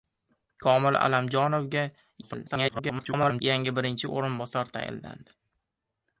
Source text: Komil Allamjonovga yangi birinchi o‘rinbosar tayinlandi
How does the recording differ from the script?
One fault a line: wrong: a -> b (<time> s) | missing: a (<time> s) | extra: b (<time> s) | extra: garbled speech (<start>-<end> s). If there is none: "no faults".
extra: garbled speech (2.2-3.4 s)